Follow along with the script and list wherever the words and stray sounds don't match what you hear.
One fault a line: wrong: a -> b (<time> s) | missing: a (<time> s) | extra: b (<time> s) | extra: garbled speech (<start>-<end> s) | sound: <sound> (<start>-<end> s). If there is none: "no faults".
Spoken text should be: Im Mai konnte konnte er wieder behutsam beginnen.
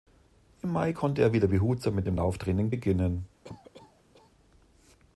missing: konnte (1.2 s)
extra: mit dem Lauftraining (1.9 s)
sound: cough (3.4-4.3 s)